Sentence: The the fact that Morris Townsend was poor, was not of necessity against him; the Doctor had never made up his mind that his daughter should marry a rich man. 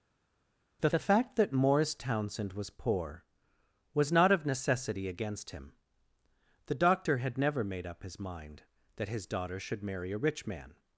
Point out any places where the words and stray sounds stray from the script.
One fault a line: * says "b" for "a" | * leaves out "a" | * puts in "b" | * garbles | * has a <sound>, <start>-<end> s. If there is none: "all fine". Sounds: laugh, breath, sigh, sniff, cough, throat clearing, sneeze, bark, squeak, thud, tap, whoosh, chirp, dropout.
all fine